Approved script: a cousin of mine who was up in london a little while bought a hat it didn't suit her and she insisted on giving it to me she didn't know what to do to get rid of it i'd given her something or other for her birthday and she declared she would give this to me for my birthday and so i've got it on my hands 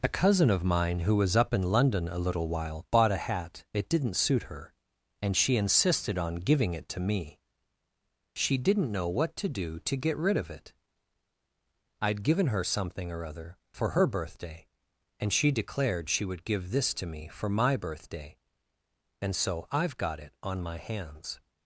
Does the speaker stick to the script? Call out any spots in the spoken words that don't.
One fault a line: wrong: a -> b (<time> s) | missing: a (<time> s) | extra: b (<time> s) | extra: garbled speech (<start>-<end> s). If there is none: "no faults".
no faults